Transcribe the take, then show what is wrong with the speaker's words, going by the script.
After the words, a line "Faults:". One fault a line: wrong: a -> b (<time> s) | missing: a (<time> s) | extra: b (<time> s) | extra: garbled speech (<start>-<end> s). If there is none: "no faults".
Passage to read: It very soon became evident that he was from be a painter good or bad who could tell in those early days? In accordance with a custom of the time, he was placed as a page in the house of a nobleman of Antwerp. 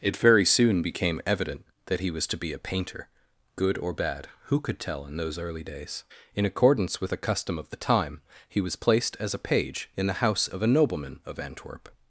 It very soon became evident that he was to be a painter good or bad who could tell in those early days? In accordance with a custom of the time, he was placed as a page in the house of a nobleman of Antwerp.
Faults:
wrong: from -> to (2.3 s)